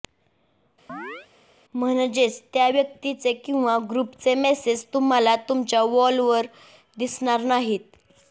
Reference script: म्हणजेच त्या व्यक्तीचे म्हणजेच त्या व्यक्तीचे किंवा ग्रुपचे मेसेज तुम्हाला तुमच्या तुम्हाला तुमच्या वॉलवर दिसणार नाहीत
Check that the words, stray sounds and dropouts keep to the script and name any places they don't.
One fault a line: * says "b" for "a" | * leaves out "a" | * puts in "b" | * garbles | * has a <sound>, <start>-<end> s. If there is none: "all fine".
* has a chirp, 0.9-1.3 s
* leaves out "म्हणजेच त्या व्यक्तीचे"
* leaves out "तुम्हाला तुमच्या"